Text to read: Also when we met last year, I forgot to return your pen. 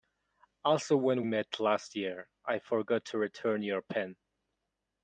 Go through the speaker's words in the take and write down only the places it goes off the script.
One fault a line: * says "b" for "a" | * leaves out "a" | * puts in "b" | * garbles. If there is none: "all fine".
* leaves out "we"